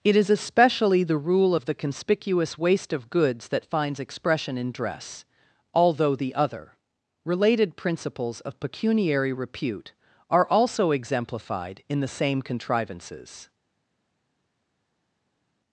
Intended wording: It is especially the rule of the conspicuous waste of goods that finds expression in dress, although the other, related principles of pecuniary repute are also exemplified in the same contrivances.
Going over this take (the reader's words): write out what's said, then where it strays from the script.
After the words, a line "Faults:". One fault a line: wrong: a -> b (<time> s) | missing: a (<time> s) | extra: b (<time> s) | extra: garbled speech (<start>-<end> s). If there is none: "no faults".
It is especially the rule of the conspicuous waste of goods that finds expression in dress, although the other, related principles of pecuniary repute are also exemplified in the same contrivances.
Faults:
no faults